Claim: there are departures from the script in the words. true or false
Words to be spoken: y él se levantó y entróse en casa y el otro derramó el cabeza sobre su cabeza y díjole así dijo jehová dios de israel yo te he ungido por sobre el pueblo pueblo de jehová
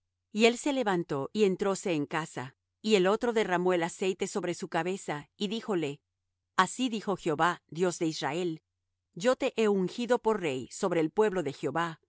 true